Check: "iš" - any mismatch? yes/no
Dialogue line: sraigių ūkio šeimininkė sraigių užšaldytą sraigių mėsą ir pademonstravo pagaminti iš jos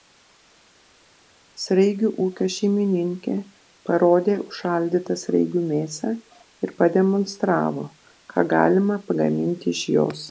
no